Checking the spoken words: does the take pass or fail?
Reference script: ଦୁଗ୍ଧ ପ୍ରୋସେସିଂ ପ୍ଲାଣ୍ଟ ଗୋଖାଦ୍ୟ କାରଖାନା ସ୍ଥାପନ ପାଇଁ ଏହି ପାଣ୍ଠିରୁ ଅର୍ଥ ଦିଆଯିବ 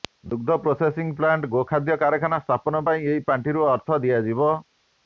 pass